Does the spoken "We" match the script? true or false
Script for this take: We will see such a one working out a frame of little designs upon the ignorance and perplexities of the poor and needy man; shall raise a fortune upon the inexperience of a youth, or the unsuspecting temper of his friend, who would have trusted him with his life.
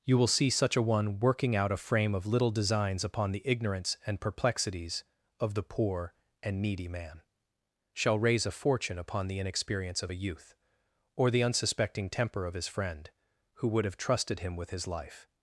false